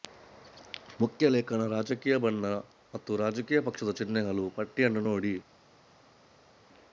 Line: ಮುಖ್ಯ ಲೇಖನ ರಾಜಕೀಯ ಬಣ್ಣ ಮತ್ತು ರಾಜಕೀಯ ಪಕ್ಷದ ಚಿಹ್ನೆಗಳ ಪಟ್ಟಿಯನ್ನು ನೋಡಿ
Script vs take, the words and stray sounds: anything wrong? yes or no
no